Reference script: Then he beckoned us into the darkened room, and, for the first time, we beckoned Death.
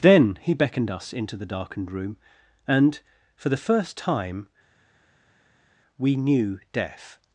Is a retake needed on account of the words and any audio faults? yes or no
yes